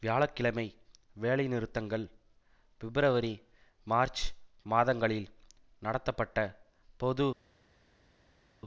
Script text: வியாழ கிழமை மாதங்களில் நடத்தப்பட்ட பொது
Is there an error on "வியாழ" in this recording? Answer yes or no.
no